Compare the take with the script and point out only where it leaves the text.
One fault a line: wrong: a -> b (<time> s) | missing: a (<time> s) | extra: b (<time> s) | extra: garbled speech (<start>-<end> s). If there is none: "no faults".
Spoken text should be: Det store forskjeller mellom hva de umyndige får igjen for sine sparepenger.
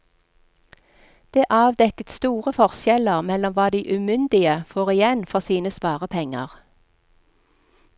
extra: avdekket (1.6 s)